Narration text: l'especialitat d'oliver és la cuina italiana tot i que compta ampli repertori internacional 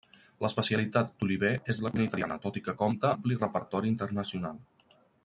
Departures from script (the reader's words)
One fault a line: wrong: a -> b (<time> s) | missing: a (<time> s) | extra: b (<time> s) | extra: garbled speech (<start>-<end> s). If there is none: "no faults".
no faults